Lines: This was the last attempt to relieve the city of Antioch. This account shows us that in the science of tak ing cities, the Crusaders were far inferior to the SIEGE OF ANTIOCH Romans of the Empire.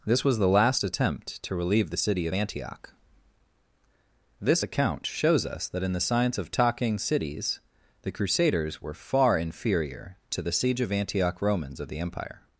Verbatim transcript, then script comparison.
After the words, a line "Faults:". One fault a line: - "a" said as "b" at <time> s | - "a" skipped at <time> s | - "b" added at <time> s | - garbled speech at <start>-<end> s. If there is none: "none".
This was the last attempt to relieve the city of Antioch. This account shows us that in the science of talking cities, the Crusaders were far inferior to the SIEGE OF ANTIOCH Romans of the Empire.
Faults:
- "tak ing" said as "talking" at 6.5 s